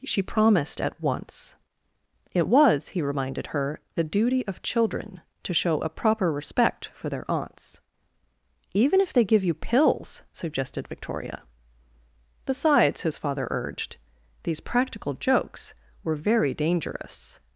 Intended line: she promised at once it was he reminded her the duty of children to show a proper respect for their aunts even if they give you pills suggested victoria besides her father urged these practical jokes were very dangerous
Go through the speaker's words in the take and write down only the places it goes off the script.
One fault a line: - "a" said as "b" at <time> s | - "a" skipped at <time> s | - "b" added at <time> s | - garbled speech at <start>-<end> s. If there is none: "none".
- "her" said as "his" at 13.0 s